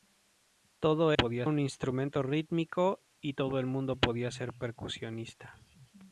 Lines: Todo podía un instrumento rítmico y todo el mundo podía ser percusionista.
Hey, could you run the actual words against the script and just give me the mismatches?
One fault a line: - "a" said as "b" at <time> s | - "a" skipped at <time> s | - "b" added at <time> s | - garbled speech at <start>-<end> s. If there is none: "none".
none